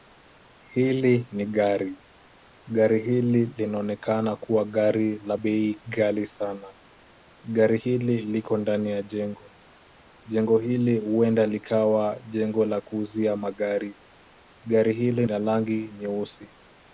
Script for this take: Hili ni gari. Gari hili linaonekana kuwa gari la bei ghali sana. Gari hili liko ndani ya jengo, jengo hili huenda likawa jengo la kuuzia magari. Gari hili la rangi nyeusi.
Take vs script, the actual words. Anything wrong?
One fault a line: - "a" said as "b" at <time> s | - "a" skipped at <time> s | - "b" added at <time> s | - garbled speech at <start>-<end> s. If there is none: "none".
none